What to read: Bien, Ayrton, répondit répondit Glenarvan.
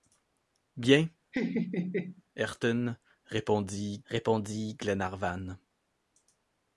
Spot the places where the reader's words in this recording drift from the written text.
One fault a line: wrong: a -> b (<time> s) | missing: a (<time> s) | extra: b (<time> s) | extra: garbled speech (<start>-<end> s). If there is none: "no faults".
no faults